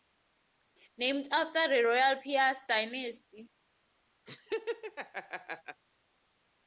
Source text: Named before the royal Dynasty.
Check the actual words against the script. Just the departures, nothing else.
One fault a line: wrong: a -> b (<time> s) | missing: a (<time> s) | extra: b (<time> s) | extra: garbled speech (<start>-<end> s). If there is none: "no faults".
wrong: before -> after (1.3 s)
extra: Piast (2.2 s)